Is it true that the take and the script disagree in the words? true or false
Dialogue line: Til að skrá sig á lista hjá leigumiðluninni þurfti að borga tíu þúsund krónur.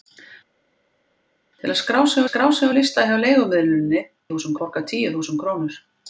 true